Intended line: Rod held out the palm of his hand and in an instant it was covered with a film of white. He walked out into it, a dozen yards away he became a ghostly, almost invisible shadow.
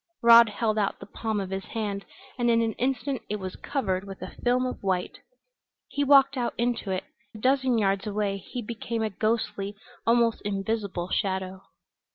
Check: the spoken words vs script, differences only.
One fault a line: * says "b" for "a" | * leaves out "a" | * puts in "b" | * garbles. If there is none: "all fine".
all fine